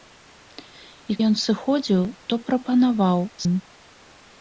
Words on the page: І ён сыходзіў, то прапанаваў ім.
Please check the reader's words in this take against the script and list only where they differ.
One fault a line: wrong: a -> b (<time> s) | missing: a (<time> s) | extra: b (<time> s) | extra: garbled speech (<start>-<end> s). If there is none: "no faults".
no faults